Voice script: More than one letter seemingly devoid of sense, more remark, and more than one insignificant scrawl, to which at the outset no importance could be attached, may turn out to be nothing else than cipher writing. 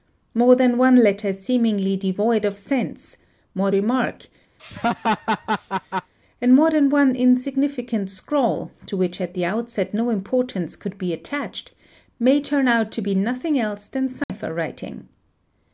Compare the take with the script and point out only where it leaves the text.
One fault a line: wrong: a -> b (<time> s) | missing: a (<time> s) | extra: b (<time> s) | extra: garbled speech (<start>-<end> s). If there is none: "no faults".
no faults